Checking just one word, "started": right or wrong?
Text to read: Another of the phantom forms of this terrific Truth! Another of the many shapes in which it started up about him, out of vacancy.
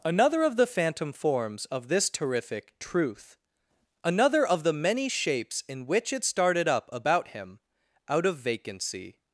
right